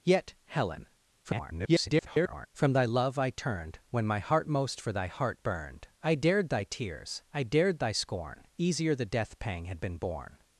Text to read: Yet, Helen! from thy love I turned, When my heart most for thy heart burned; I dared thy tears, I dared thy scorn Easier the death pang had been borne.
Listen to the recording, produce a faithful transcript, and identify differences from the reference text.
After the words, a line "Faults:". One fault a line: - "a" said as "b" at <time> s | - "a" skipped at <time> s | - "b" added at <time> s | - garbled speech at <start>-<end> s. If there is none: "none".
Yet, Helen! [garbled] from thy love I turned, When my heart most for thy heart burned; I dared thy tears, I dared thy scorn Easier the death pang had been borne.
Faults:
- garbled speech at 1.2-2.5 s